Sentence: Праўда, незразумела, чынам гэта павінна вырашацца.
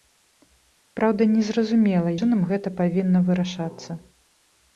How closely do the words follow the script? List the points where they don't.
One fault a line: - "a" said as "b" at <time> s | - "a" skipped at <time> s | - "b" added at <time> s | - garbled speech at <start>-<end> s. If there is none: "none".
none